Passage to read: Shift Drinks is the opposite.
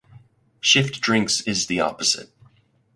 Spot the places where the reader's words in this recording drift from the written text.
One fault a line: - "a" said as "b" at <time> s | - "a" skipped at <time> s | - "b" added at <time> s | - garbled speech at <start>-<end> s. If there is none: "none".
none